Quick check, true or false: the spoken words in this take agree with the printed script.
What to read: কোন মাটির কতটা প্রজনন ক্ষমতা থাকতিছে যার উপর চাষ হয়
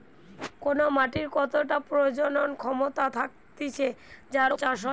false